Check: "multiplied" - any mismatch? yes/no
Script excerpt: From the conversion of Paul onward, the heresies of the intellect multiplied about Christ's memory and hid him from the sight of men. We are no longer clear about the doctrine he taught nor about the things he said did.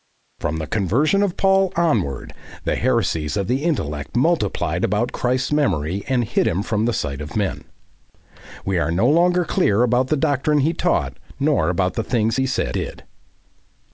no